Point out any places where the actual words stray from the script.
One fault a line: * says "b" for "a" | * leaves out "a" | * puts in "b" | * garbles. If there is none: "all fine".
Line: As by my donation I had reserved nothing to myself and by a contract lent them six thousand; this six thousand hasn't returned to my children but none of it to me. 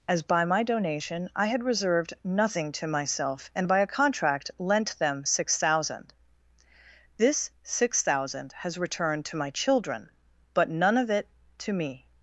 * says "has" for "hasn't"